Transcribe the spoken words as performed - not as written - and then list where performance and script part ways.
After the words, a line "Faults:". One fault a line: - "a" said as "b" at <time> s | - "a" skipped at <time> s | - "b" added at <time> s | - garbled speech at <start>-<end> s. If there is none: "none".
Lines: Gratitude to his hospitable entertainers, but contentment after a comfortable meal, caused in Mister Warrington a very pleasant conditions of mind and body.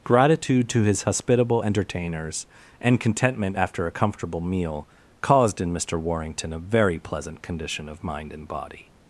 Gratitude to his hospitable entertainers, and contentment after a comfortable meal, caused in Mister Warrington a very pleasant condition of mind and body.
Faults:
- "but" said as "and" at 2.8 s
- "conditions" said as "condition" at 7.4 s